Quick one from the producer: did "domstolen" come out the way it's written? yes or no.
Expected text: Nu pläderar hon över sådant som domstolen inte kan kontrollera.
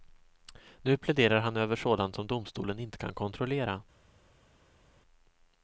yes